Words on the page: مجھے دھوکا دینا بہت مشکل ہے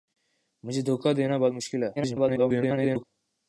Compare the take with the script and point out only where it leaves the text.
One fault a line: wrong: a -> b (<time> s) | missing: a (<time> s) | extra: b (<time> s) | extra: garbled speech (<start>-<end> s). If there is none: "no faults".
extra: garbled speech (2.0-3.0 s)